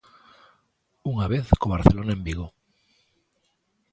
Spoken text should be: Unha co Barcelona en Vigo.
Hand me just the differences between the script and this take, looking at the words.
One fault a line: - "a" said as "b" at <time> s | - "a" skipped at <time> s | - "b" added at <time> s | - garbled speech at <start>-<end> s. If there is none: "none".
- "vez" added at 1.3 s